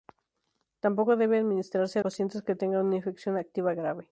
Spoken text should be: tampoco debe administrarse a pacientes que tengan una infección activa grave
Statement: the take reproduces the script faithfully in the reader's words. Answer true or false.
true